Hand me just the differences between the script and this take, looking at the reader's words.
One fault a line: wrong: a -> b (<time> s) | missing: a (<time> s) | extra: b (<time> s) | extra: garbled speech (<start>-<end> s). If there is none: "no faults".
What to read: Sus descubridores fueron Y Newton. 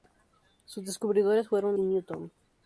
no faults